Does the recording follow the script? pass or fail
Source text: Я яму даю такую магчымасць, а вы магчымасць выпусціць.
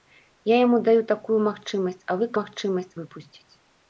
pass